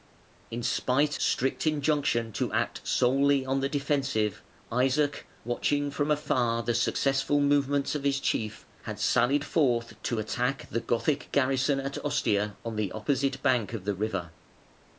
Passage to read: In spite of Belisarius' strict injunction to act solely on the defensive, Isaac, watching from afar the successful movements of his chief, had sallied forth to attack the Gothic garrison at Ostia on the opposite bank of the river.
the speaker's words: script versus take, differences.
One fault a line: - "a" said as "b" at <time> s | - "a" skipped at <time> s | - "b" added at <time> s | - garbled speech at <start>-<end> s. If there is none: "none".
- "of Belisarius" skipped at 1.2 s